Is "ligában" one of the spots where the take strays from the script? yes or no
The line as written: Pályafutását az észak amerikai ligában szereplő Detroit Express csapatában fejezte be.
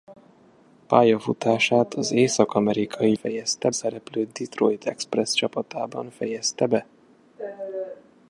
yes